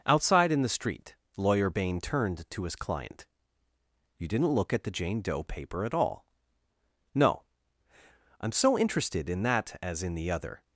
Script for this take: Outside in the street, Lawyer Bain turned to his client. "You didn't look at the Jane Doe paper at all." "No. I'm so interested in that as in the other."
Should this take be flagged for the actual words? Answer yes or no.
no